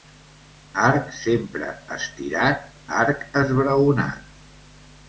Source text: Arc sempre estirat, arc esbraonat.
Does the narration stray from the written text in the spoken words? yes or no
no